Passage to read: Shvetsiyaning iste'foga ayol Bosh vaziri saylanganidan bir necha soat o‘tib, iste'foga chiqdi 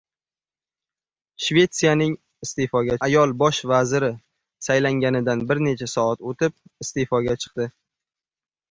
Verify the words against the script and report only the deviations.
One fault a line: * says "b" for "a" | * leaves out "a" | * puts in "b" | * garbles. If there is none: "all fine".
all fine